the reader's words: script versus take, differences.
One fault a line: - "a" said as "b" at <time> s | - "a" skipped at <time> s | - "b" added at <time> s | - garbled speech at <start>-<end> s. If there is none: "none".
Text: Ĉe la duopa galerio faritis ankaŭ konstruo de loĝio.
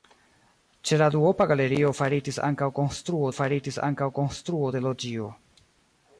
- "faritis ankaŭ konstruo" added at 3.4 s